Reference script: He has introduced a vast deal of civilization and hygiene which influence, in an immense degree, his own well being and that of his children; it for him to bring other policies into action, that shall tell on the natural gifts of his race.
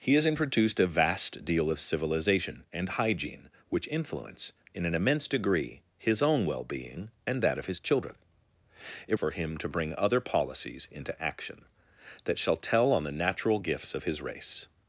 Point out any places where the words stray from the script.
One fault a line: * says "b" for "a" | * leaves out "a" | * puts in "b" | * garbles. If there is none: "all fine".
all fine